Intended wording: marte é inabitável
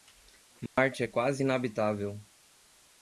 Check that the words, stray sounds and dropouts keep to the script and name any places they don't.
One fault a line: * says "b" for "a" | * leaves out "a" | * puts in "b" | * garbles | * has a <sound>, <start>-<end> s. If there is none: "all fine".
* has a dropout, 0.7-0.8 s
* puts in "quase"